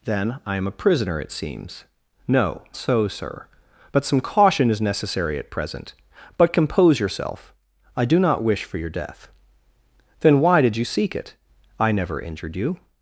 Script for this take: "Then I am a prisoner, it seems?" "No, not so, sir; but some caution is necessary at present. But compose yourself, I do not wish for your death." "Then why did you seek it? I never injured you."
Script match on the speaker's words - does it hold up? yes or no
no